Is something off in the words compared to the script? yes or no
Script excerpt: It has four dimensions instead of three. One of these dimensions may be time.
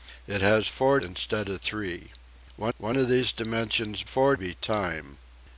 yes